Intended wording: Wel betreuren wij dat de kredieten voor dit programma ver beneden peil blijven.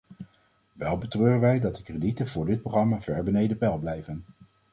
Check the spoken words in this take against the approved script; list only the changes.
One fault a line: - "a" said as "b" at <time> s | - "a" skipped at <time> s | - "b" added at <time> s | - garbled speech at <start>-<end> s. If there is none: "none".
none